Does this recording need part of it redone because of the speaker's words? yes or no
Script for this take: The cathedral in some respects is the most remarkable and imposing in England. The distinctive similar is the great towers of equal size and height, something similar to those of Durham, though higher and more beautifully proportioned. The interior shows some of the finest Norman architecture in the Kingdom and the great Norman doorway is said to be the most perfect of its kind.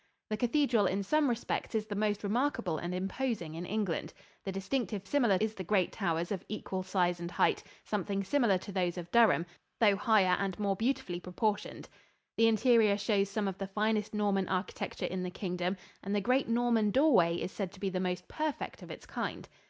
no